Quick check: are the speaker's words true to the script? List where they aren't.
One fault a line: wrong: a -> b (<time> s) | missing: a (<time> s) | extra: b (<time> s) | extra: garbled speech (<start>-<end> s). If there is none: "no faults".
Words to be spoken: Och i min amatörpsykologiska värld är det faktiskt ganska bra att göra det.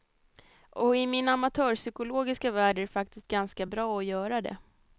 no faults